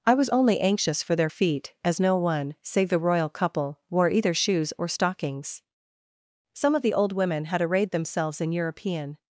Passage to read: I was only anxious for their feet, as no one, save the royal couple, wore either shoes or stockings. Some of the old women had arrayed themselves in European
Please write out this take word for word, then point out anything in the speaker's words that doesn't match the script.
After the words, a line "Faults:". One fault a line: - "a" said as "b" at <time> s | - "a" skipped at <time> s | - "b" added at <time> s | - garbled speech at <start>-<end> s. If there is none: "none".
I was only anxious for their feet, as no one, save the royal couple, wore either shoes or stockings. Some of the old women had arrayed themselves in European
Faults:
none